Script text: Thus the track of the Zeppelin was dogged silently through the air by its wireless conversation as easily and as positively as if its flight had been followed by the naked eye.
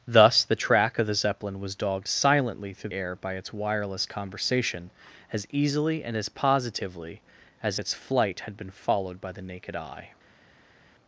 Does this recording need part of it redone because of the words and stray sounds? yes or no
yes